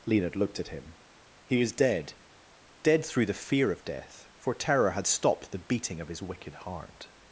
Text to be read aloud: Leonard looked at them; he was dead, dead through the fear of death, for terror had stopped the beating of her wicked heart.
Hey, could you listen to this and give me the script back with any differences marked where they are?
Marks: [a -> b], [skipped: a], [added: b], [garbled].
Leonard looked at [them; -> him] he was dead, dead through the fear of death, for terror had stopped the beating of [her -> his] wicked heart.